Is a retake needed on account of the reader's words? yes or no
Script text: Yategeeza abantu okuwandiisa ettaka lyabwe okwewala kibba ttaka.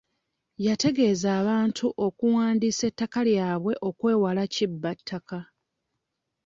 no